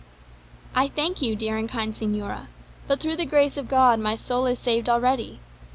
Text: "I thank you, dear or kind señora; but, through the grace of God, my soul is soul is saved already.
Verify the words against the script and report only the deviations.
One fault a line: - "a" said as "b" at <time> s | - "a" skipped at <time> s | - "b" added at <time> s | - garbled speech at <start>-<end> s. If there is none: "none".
- "or" said as "and" at 1.6 s
- "soul is" skipped at 4.6 s